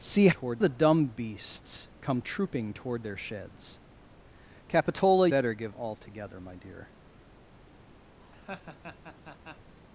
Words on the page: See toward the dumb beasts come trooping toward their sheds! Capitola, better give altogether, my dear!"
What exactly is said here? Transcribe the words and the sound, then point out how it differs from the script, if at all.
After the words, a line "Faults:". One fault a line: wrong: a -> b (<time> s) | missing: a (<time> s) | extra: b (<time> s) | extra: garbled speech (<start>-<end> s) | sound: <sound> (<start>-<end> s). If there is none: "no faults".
See toward the dumb beasts come trooping toward their sheds! Capitola, better give altogether, my dear!"
Faults:
sound: laugh (8.2-9.7 s)